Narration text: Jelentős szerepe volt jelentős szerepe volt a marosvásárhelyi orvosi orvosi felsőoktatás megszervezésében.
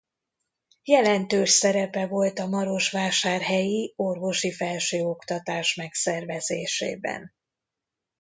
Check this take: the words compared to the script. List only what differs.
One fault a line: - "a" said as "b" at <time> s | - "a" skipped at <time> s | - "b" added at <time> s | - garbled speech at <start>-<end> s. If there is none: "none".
- "jelentős szerepe volt" skipped at 2.4 s
- "orvosi" skipped at 4.5 s